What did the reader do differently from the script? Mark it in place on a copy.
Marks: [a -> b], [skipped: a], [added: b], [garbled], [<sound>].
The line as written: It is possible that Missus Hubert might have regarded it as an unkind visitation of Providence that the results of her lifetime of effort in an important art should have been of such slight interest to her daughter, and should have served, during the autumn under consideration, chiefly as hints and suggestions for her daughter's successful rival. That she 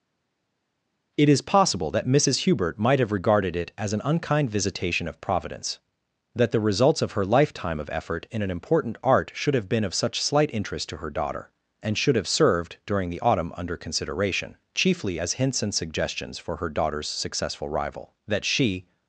It is possible that Missus Hubert might have regarded it as an unkind visitation of Providence that the results of her lifetime of effort in an important art should have been of such slight interest to her daughter, and should have served, during the autumn under consideration, chiefly as hints and suggestions for her daughter's successful rival. That she